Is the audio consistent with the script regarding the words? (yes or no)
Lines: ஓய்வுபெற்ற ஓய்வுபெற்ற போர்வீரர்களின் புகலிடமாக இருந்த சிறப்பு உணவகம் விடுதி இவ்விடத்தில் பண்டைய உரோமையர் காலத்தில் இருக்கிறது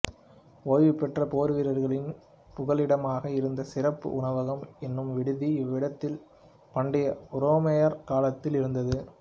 no